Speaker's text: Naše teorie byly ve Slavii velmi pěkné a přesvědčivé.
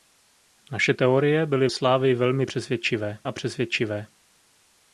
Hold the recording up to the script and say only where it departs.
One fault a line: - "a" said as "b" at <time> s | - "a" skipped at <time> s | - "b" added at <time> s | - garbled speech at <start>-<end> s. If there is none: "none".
- "ve" skipped at 1.7 s
- "pěkné" said as "přesvědčivé" at 2.4 s